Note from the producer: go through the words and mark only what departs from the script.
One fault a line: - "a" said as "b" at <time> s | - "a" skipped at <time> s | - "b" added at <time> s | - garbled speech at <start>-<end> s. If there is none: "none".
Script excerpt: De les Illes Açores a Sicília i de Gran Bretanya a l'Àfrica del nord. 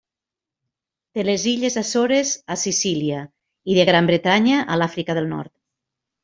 none